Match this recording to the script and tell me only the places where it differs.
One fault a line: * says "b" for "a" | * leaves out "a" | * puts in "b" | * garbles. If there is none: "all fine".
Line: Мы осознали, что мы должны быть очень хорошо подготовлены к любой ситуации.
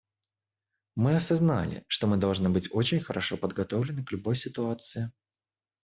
all fine